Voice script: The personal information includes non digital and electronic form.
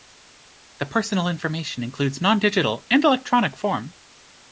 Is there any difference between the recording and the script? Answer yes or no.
no